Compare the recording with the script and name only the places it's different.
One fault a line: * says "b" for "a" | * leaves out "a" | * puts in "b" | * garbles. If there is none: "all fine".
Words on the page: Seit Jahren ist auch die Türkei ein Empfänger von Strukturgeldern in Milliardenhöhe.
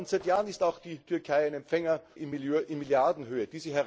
* leaves out "von Strukturgeldern"